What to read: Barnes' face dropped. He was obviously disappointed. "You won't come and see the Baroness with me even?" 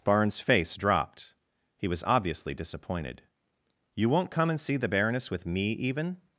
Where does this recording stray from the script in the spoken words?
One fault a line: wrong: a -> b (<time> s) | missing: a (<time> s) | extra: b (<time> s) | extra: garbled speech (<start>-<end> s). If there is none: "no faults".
no faults